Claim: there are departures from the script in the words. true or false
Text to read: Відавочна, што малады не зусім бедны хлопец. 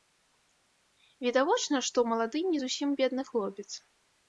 false